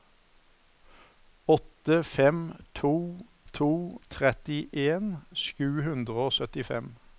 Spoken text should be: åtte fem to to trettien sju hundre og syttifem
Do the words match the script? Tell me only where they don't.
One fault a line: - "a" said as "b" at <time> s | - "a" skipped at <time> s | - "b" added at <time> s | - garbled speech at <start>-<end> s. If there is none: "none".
none